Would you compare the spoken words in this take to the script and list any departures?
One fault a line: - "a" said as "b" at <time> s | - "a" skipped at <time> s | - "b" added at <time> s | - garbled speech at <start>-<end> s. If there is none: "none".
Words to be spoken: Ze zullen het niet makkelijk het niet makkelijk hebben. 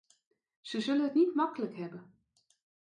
- "het niet makkelijk" skipped at 1.8 s